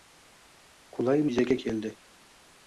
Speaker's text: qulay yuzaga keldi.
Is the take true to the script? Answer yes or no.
yes